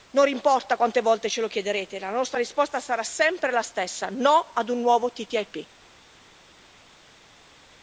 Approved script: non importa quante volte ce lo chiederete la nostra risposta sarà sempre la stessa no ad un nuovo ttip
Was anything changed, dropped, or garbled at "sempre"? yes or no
no